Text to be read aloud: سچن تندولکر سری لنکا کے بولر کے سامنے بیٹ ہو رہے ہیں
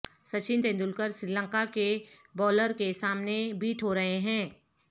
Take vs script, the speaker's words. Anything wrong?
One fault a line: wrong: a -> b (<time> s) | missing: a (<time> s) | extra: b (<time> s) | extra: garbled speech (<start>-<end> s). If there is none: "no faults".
no faults